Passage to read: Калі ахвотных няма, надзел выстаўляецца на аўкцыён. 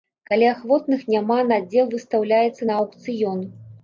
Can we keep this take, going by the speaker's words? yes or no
yes